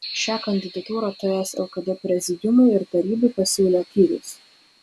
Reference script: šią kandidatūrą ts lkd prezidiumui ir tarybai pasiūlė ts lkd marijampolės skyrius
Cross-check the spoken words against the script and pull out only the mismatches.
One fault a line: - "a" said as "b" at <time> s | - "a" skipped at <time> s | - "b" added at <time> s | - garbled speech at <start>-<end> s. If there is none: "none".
- "ts lkd marijampolės" skipped at 3.8 s